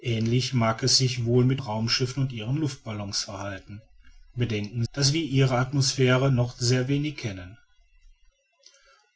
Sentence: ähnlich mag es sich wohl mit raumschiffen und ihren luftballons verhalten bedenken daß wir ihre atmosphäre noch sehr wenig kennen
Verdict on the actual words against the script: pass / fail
pass